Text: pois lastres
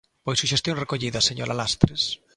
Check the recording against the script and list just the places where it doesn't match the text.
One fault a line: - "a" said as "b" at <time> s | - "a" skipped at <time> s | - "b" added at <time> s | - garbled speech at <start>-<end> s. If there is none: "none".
- "suxestión recollida señora" added at 0.4 s